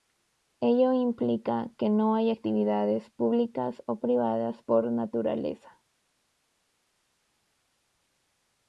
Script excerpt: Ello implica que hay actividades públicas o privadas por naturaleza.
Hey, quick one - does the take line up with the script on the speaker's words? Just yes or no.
no